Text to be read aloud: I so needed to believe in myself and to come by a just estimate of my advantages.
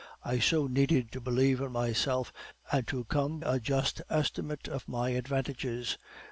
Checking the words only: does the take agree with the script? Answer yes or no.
no